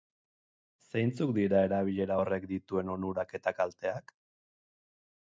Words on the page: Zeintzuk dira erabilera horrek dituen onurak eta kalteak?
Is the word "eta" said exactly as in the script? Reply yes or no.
yes